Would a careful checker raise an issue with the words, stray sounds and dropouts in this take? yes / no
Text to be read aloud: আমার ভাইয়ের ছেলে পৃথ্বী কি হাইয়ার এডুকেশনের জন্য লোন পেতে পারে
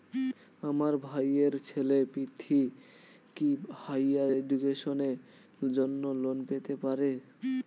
no